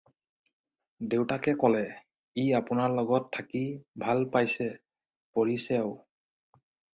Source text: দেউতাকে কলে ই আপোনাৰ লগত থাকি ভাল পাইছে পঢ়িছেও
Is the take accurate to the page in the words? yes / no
yes